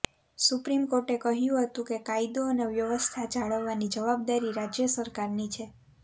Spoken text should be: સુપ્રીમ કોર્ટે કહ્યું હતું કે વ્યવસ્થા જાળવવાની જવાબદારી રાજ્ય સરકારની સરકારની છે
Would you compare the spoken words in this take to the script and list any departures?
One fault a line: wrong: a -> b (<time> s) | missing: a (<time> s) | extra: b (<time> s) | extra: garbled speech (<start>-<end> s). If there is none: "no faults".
extra: કાયદો અને (2.1 s)
missing: સરકારની (5.5 s)